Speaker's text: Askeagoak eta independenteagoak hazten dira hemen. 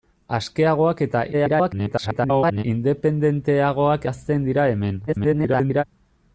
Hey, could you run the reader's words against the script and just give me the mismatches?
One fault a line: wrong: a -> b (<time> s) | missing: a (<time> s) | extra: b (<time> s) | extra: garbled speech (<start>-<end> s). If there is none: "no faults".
extra: garbled speech (1.3-2.6 s)
extra: garbled speech (5.1-5.8 s)